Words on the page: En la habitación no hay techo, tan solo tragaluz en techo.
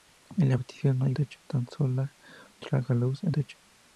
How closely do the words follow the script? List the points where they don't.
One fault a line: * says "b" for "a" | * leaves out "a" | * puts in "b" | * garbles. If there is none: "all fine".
all fine